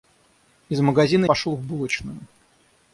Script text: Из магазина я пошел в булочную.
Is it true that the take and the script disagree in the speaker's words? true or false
true